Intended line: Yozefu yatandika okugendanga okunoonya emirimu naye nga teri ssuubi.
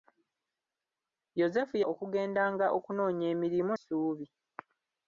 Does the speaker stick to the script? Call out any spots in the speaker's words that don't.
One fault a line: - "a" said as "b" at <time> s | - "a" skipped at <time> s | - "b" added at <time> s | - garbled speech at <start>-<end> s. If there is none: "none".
- "yatandika" skipped at 1.8 s
- "naye nga teri" skipped at 3.7 s